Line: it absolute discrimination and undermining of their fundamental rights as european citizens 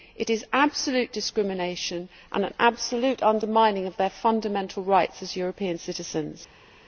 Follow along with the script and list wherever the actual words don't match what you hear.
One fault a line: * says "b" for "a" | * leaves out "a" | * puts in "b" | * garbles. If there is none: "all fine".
* puts in "is"
* puts in "an absolute"